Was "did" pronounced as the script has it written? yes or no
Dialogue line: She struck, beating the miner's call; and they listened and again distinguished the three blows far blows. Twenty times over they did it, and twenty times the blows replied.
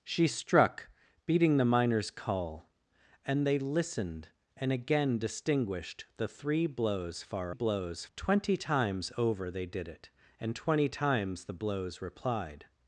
yes